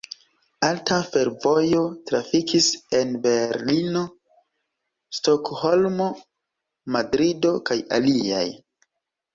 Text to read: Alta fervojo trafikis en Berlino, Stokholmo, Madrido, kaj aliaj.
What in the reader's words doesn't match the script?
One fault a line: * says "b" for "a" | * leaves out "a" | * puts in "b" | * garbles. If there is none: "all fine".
all fine